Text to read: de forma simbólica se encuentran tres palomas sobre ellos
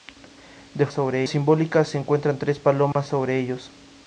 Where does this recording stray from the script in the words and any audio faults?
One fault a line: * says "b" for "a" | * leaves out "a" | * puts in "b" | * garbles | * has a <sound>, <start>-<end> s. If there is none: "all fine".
* says "sobre" for "forma"
* has a dropout, 2.9-3.0 s